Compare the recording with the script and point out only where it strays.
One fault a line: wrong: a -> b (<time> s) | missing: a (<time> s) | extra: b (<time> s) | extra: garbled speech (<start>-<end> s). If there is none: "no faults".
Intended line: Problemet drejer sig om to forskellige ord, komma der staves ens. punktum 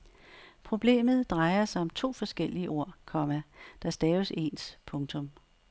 no faults